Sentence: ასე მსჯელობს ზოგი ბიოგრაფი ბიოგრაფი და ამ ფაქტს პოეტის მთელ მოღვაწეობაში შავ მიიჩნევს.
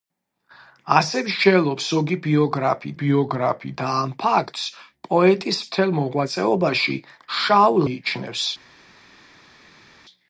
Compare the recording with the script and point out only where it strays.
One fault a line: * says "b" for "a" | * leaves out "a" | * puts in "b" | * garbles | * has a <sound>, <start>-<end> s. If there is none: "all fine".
all fine